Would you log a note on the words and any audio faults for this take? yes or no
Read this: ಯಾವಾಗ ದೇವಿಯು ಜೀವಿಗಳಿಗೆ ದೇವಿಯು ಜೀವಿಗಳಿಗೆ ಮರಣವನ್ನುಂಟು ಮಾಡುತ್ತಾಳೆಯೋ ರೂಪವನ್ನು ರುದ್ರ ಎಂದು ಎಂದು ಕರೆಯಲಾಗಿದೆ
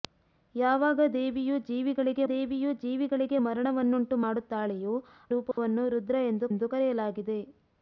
yes